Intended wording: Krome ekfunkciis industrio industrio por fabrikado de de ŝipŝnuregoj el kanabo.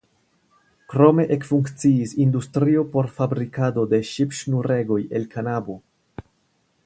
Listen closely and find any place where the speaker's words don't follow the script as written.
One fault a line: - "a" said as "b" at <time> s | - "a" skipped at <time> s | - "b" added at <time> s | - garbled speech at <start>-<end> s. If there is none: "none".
- "industrio" skipped at 2.9 s
- "de" skipped at 4.0 s